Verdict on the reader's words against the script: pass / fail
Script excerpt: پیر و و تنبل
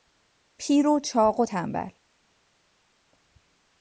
fail